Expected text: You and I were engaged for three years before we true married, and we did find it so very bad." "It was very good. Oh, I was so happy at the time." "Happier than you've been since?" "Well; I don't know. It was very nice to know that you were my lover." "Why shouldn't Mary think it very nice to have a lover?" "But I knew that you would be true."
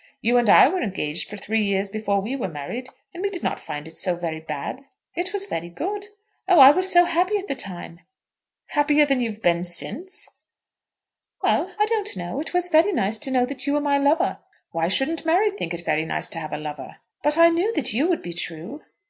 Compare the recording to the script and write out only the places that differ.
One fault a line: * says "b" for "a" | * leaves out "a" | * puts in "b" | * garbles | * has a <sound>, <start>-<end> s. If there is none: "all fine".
* says "were" for "true"
* puts in "not"